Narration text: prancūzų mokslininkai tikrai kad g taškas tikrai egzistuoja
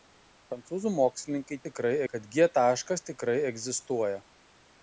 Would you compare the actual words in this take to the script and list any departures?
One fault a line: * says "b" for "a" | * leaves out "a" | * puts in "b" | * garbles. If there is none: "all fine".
all fine